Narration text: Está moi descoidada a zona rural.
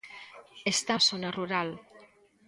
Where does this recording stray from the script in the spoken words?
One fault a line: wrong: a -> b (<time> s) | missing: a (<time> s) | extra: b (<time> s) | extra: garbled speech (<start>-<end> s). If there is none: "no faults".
missing: moi descoidada (0.9 s)